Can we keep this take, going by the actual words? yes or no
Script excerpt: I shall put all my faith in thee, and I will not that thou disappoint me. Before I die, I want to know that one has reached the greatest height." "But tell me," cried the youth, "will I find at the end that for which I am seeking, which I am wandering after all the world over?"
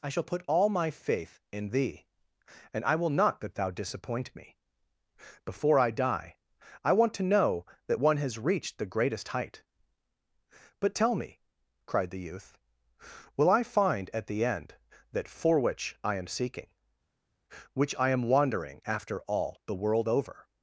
yes